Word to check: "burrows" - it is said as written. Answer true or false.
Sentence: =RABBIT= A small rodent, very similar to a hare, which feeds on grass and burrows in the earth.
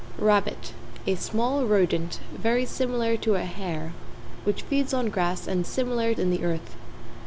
false